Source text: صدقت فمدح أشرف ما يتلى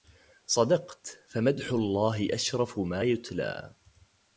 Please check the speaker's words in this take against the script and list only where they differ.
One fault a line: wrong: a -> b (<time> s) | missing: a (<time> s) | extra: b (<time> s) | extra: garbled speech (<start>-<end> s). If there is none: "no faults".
extra: الله (1.7 s)